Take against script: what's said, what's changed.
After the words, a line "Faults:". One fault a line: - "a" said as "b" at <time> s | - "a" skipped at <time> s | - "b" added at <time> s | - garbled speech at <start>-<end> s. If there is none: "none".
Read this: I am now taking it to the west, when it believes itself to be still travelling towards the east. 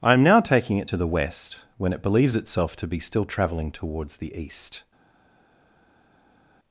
I am now taking it to the west, when it believes itself to be still travelling towards the east.
Faults:
none